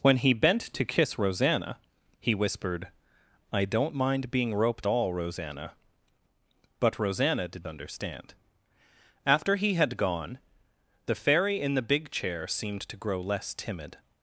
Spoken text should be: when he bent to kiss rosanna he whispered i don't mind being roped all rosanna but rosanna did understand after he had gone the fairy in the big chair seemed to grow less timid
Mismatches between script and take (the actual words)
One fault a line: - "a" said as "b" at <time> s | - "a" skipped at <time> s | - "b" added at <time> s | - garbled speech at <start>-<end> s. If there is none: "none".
none